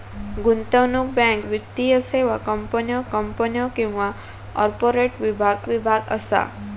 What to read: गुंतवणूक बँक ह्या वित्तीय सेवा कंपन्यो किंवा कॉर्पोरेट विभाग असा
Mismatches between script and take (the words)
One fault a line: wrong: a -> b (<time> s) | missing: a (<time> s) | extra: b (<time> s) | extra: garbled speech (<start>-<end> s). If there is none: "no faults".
missing: ह्या (1.4 s)
extra: कंपन्यो (3.1 s)
extra: विभाग (5.7 s)